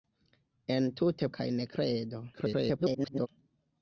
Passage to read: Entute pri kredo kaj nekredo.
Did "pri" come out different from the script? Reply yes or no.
yes